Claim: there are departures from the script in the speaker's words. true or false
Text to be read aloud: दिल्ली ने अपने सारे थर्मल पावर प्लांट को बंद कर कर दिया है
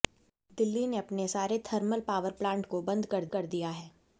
false